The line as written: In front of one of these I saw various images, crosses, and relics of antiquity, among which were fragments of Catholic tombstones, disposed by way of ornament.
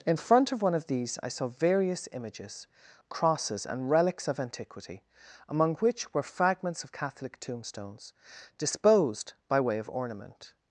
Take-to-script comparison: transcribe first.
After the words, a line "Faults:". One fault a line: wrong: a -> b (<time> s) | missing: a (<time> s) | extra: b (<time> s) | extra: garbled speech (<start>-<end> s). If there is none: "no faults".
In front of one of these I saw various images, crosses, and relics of antiquity, among which were fragments of Catholic tombstones, disposed by way of ornament.
Faults:
no faults